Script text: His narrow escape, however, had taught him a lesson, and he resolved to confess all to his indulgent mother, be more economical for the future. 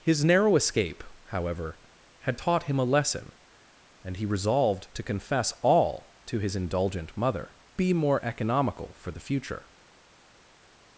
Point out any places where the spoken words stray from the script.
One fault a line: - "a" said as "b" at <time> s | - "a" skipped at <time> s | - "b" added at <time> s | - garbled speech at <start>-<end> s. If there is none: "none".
none